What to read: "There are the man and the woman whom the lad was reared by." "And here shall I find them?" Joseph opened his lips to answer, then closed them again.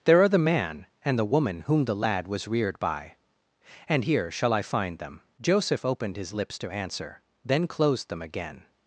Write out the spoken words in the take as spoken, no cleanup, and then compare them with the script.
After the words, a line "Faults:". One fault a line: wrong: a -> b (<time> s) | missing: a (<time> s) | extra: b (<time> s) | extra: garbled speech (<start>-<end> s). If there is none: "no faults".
"There are the man and the woman whom the lad was reared by." "And here shall I find them?" Joseph opened his lips to answer, then closed them again.
Faults:
no faults